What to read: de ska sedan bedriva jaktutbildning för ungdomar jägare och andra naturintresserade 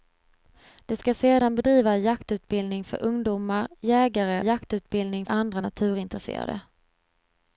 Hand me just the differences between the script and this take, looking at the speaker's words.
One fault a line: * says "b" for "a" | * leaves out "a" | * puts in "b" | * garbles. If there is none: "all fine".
* says "jaktutbildning" for "och"